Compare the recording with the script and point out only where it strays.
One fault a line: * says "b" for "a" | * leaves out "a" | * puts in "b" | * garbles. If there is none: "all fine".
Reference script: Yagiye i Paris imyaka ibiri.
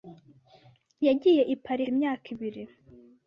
all fine